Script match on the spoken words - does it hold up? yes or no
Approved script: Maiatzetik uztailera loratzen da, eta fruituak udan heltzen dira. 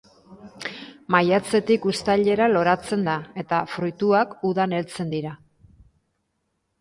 yes